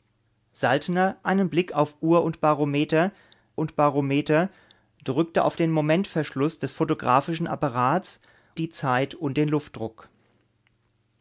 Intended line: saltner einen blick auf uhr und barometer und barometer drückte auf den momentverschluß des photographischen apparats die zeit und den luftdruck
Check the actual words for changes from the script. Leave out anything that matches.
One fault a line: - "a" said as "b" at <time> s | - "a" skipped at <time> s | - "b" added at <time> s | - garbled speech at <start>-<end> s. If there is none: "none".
none